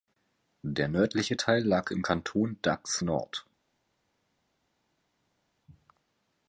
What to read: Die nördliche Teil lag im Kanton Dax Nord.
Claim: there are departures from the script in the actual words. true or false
true